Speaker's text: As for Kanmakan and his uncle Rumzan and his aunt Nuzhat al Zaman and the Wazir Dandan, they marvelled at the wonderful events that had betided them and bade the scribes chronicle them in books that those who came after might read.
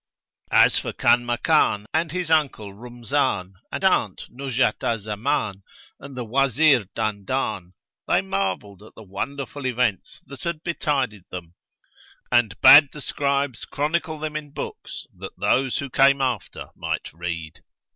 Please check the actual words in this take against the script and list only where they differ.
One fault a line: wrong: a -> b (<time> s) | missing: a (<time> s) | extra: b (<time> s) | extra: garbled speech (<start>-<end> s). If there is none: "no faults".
missing: his (3.8 s)